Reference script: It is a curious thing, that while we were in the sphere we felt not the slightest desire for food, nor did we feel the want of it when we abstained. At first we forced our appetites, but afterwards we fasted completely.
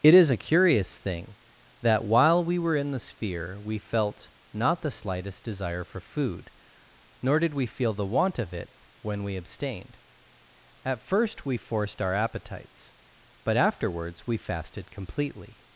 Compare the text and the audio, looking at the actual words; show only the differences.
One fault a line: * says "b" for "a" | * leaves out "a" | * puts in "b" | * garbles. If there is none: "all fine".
all fine